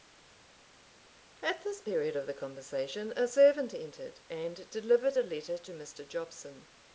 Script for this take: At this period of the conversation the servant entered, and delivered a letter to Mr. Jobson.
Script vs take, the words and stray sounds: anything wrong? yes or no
yes